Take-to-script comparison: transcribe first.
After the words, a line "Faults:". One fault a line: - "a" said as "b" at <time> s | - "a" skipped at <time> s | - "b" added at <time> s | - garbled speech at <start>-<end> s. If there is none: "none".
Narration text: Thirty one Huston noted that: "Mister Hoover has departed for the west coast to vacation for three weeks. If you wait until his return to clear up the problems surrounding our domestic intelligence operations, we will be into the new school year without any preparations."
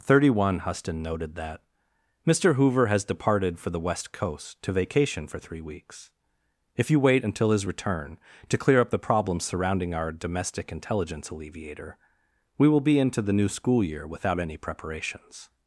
Thirty one Huston noted that: "Mister Hoover has departed for the west coast to vacation for three weeks. If you wait until his return to clear up the problems surrounding our domestic intelligence alleviator, we will be into the new school year without any preparations."
Faults:
- "operations" said as "alleviator" at 11.3 s